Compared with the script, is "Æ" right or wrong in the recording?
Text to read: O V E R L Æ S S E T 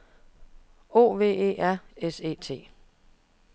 wrong